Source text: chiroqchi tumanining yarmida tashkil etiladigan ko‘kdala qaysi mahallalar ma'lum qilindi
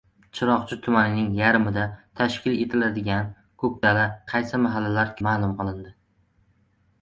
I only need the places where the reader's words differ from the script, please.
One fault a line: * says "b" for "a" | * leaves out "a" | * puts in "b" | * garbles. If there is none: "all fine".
all fine